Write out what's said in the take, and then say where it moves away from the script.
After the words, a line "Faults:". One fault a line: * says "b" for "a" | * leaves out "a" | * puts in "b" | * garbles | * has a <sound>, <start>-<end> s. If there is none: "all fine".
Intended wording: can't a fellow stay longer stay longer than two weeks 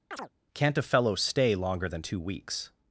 can't a fellow stay longer than two weeks
Faults:
* has a chirp, 0.1-0.3 s
* leaves out "stay longer"